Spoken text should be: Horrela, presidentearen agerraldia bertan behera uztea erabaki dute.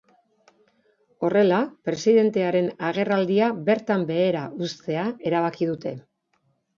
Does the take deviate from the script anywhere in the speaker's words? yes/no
no